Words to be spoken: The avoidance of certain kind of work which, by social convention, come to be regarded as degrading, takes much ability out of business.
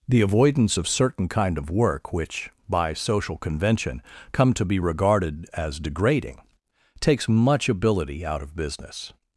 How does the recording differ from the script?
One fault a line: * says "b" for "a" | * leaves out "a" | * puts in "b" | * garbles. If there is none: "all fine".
all fine